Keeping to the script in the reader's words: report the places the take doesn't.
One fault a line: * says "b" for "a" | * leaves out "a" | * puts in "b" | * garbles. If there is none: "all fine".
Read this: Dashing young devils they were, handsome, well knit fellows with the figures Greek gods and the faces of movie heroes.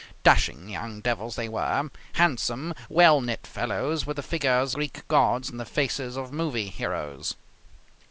all fine